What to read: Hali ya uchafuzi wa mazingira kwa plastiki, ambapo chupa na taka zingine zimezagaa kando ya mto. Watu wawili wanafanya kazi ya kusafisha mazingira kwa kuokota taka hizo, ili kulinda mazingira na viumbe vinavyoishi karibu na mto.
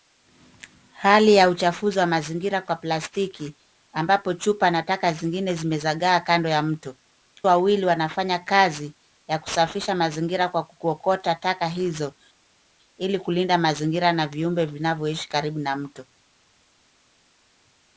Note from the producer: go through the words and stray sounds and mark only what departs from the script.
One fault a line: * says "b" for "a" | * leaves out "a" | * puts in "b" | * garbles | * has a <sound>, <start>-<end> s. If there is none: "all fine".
* leaves out "Watu"